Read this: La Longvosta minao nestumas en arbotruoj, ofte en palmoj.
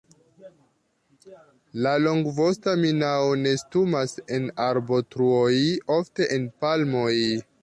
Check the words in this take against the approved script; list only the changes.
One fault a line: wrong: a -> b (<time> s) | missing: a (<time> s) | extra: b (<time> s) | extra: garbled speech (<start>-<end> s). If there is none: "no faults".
no faults